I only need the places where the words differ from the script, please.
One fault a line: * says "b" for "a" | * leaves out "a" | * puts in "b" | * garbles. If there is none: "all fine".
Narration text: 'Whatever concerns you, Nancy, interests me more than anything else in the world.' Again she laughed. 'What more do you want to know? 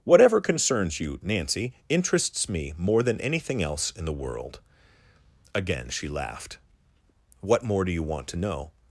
all fine